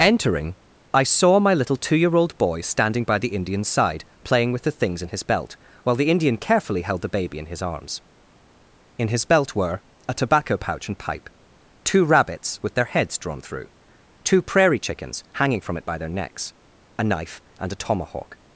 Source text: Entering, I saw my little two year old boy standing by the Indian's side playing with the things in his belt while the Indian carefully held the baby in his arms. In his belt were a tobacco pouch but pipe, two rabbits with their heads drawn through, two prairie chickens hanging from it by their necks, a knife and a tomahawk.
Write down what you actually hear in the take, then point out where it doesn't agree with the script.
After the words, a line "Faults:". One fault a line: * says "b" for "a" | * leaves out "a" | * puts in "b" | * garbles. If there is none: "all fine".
Entering, I saw my little two year old boy standing by the Indian's side playing with the things in his belt while the Indian carefully held the baby in his arms. In his belt were a tobacco pouch and pipe, two rabbits with their heads drawn through, two prairie chickens hanging from it by their necks, a knife and a tomahawk.
Faults:
* says "and" for "but"